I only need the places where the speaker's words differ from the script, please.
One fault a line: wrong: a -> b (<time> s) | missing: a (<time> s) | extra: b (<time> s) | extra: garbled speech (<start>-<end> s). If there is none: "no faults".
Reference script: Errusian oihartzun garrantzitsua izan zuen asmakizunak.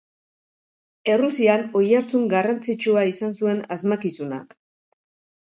no faults